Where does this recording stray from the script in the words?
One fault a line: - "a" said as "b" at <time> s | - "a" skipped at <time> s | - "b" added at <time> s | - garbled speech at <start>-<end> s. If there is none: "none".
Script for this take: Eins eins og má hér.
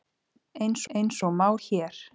none